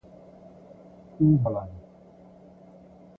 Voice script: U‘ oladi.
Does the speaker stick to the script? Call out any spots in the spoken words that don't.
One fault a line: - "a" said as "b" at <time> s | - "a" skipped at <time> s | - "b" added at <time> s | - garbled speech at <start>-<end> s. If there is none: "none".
none